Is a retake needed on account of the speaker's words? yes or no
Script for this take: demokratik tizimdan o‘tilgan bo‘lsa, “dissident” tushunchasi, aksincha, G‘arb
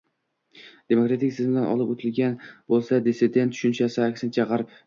yes